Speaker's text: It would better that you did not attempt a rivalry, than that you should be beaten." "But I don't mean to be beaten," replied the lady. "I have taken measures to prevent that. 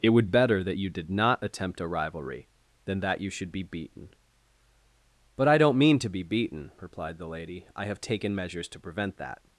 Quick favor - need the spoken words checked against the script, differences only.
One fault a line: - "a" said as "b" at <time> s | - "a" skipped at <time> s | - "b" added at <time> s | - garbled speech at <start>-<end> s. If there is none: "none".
none